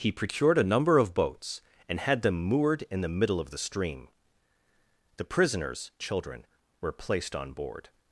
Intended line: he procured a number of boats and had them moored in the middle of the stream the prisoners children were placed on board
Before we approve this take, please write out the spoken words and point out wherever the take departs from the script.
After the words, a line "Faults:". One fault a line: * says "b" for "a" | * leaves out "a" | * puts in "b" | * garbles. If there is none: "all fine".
he procured a number of boats and had them moored in the middle of the stream the prisoners children were placed on board
Faults:
all fine